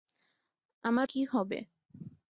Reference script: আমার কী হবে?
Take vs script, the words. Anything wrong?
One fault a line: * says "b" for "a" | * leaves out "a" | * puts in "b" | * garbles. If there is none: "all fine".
all fine